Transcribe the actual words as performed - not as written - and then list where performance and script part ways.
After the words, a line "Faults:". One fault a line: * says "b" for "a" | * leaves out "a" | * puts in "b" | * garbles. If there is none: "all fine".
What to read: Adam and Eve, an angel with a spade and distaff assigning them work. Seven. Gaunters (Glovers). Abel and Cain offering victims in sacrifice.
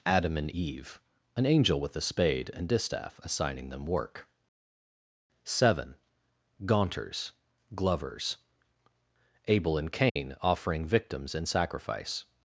Adam and Eve, an angel with a spade and distaff assigning them work. Seven. Gaunters (Glovers). Abel and Cain offering victims in sacrifice.
Faults:
all fine